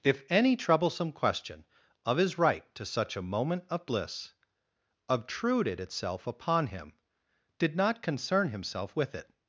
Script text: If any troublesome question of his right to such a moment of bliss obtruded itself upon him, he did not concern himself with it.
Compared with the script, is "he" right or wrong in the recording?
wrong